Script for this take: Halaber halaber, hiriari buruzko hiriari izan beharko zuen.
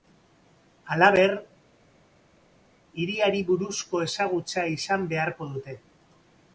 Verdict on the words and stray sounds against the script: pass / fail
fail